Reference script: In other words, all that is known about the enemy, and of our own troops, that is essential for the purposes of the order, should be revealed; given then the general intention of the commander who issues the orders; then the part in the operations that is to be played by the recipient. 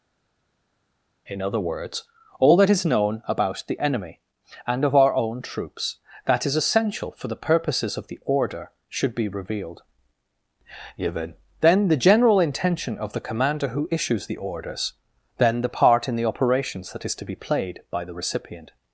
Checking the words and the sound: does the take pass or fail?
pass